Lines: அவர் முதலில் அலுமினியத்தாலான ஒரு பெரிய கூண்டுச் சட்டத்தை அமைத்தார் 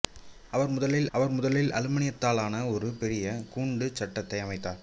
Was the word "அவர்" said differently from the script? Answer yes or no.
no